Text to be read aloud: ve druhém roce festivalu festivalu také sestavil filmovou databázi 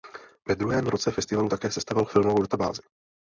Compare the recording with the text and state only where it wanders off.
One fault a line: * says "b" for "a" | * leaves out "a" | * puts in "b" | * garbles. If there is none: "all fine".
* leaves out "festivalu"